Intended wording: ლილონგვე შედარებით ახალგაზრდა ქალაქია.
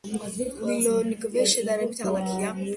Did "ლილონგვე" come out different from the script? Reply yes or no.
no